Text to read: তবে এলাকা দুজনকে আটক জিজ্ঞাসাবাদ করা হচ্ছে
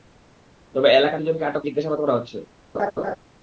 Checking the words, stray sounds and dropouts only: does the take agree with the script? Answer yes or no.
no